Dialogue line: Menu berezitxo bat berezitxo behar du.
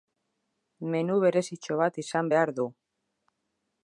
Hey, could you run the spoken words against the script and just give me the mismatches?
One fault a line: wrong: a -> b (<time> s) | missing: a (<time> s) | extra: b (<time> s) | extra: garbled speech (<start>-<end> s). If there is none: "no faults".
wrong: berezitxo -> izan (2.0 s)